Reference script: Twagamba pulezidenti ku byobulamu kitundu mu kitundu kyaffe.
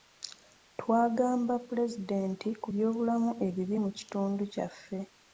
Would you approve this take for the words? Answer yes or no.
no